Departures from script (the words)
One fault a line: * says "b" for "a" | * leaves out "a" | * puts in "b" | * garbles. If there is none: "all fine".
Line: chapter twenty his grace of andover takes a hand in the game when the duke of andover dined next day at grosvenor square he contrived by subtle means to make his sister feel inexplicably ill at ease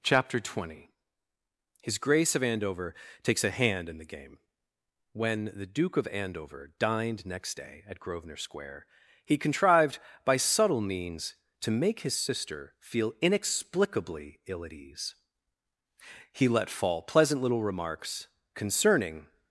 * puts in "he let fall pleasant little remarks concerning"